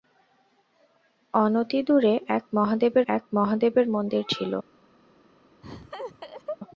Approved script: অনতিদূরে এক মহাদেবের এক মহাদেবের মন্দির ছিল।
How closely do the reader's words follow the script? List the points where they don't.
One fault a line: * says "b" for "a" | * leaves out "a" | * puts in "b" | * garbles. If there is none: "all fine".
all fine